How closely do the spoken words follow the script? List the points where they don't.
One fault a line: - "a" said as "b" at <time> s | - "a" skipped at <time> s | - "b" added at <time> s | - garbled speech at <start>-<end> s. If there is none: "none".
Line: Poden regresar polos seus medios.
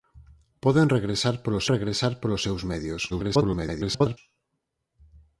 - "regresar polos" added at 1.7 s
- garbled speech at 3.1-4.2 s